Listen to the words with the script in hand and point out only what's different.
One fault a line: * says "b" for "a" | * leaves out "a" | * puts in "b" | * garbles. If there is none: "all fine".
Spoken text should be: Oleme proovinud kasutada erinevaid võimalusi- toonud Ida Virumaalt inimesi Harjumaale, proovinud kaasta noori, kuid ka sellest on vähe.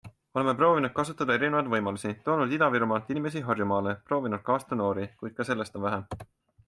all fine